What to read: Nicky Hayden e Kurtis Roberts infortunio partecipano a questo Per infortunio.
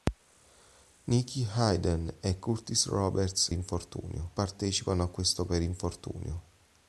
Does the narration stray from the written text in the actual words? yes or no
no